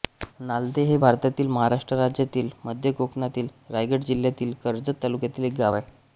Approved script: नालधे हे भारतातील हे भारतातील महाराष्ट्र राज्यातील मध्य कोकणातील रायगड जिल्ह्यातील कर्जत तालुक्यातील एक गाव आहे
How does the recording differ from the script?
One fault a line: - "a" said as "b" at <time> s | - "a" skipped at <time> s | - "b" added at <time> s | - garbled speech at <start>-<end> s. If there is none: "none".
- "हे भारतातील" skipped at 1.5 s